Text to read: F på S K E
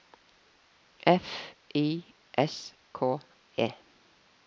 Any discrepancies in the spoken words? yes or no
yes